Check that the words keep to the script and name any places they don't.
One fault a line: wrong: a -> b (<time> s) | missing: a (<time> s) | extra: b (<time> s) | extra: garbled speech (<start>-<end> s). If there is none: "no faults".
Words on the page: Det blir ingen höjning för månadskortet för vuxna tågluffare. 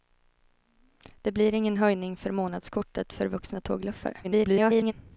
extra: garbled speech (4.2-4.9 s)